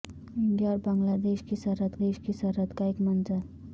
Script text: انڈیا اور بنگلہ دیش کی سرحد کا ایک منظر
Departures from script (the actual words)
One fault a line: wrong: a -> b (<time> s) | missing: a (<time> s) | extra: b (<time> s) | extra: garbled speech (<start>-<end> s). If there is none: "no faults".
extra: دیش کی سرحد (2.0 s)